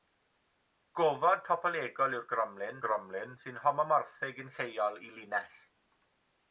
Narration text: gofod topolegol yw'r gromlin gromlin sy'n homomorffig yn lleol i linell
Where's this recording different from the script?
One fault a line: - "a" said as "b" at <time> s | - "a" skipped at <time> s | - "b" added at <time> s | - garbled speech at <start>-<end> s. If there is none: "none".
none